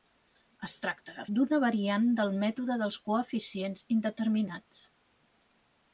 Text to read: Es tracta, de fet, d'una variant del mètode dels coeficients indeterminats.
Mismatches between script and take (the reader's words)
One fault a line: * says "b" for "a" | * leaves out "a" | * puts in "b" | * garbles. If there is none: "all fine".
* leaves out "fet"